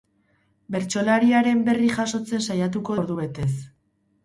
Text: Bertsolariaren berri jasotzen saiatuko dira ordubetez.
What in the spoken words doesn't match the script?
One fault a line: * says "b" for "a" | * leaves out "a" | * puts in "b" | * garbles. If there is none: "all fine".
* leaves out "dira"